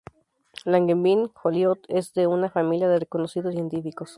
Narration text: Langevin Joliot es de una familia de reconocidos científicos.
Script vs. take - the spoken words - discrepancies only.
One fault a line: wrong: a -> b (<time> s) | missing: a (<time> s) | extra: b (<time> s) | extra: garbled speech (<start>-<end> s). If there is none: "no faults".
no faults